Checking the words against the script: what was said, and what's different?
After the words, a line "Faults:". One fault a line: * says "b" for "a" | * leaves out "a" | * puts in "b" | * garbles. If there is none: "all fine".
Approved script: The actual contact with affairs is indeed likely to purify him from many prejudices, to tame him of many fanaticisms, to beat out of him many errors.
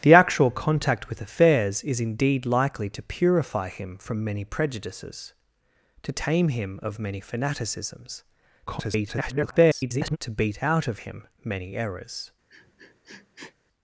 The actual contact with affairs is indeed likely to purify him from many prejudices, to tame him of many fanaticisms, [garbled] to beat out of him many errors.
Faults:
* garbles